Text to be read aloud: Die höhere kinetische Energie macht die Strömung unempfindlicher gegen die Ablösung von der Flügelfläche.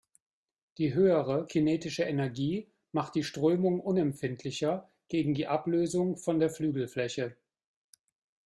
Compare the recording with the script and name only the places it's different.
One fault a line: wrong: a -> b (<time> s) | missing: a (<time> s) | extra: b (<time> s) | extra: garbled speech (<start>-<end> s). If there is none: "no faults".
no faults